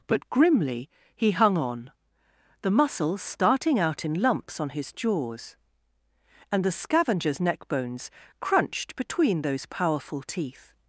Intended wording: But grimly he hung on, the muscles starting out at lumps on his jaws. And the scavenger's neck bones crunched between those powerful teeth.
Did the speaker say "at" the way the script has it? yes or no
no